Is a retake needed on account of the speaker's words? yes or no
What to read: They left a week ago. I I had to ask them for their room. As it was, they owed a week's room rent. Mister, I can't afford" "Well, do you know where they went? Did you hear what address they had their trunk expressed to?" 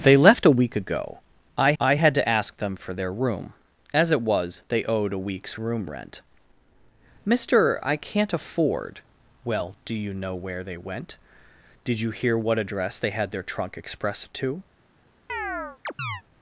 no